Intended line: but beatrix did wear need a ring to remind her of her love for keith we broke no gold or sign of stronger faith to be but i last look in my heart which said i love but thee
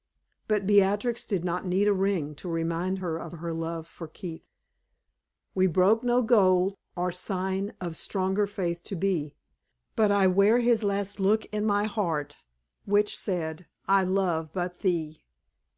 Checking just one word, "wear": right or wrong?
wrong